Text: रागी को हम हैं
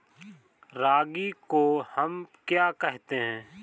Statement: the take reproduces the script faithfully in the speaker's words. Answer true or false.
false